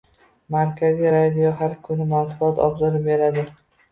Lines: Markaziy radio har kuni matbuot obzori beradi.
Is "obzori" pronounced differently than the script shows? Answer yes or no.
no